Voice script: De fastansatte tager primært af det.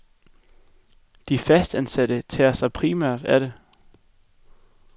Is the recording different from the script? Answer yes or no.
yes